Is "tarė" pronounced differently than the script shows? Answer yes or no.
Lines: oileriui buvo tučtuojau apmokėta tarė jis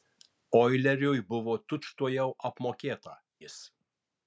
yes